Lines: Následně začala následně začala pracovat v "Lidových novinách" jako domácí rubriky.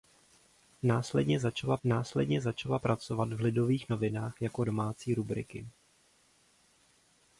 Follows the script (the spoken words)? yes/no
yes